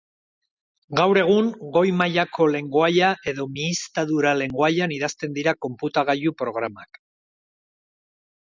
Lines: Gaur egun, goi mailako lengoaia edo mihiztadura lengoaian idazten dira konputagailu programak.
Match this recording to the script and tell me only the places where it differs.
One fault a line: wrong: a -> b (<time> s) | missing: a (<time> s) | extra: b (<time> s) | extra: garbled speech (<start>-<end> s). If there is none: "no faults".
no faults